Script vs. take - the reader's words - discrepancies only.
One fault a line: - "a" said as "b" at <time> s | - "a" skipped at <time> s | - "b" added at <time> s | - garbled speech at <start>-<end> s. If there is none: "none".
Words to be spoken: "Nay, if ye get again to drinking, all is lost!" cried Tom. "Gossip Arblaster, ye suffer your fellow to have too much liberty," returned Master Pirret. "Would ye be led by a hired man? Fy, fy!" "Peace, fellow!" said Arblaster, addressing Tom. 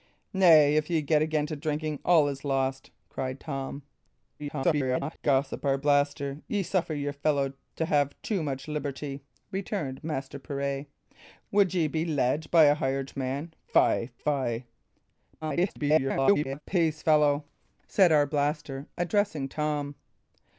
- garbled speech at 4.4-5.2 s
- garbled speech at 15.4-16.6 s